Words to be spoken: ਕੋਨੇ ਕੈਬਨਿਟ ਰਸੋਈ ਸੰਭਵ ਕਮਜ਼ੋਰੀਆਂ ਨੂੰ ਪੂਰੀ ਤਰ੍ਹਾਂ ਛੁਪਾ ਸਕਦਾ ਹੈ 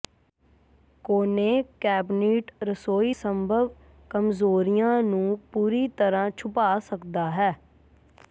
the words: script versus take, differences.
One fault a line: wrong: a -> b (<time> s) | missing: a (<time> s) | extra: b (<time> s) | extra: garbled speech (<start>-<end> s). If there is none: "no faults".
no faults